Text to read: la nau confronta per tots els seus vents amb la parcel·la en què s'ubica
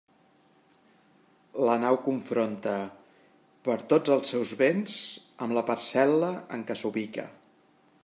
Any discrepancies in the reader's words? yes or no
no